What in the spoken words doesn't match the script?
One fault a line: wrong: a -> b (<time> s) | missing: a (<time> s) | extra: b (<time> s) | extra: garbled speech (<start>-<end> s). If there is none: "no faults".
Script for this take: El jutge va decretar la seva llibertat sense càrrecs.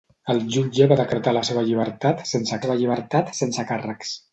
extra: seva llibertat sense (2.6 s)